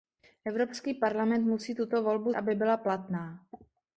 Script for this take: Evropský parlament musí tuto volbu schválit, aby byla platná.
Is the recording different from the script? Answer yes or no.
yes